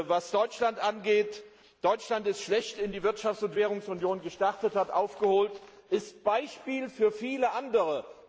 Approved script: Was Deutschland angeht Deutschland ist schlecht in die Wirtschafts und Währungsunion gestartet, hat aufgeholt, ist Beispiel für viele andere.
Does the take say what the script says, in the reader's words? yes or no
yes